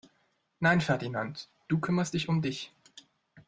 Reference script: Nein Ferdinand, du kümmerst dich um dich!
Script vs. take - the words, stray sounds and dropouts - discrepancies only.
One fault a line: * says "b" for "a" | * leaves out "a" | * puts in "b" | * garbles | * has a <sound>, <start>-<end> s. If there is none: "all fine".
all fine